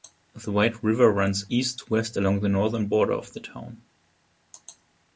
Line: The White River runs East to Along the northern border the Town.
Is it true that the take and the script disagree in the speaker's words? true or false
true